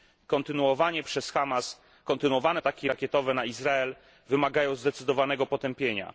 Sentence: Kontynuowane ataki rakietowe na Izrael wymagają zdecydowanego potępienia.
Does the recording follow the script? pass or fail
pass